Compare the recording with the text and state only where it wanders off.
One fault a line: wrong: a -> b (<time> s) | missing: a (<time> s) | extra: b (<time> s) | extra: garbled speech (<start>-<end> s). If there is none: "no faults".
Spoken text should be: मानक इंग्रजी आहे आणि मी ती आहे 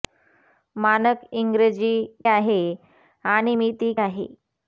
no faults